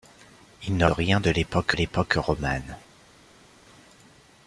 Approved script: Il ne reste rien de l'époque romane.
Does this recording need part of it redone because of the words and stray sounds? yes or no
yes